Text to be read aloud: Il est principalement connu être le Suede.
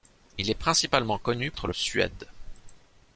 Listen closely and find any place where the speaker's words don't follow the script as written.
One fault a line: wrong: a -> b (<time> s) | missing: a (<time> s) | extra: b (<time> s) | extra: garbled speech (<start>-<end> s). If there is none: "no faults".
no faults